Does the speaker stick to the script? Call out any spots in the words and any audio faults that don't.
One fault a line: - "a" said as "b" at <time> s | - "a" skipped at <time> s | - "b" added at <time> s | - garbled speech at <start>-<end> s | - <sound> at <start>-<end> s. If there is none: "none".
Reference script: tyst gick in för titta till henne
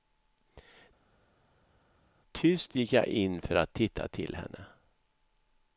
- "jag" added at 2.9 s
- "att" added at 3.5 s